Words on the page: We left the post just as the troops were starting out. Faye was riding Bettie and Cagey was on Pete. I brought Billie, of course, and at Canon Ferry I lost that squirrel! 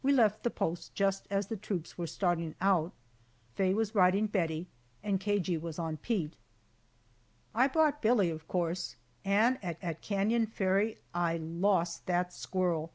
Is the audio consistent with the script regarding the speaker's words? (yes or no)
no